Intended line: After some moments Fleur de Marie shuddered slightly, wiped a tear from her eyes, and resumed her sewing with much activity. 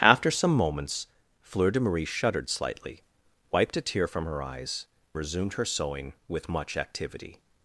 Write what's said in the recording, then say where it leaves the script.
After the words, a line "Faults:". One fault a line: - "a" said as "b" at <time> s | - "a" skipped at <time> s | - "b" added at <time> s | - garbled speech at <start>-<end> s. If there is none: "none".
After some moments Fleur de Marie shuddered slightly, wiped a tear from her eyes, resumed her sewing with much activity.
Faults:
- "and" skipped at 4.9 s